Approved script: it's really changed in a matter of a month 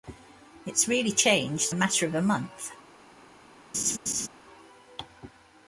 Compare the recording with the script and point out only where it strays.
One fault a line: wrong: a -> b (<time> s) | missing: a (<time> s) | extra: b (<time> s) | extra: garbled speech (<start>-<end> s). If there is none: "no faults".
missing: in (1.8 s)